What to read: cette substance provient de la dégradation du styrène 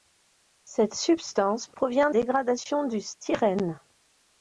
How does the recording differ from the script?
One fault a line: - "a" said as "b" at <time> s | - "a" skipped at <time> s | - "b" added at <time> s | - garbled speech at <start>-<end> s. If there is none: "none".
- "de la" skipped at 2.1 s